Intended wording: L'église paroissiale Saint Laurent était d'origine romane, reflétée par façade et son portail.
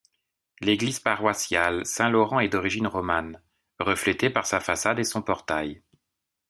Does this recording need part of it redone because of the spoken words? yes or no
yes